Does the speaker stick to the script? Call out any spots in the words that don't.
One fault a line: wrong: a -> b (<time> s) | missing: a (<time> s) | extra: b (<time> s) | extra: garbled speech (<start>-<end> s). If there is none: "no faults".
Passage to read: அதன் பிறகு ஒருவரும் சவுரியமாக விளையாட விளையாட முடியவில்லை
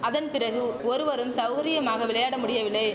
missing: விளையாட (2.4 s)